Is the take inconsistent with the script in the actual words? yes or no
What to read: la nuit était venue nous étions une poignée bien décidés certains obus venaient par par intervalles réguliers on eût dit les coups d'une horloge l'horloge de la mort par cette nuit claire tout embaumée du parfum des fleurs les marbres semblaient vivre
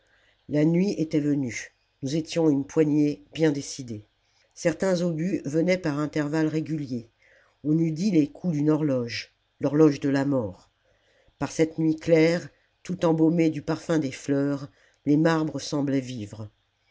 yes